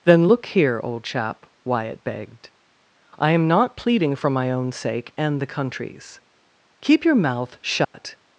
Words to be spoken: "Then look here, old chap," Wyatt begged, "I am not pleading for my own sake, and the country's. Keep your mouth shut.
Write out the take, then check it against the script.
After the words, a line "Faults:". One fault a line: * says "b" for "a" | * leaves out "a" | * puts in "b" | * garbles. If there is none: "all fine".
"Then look here, old chap," Wyatt begged, "I am not pleading for my own sake, and the country's. Keep your mouth shut.
Faults:
all fine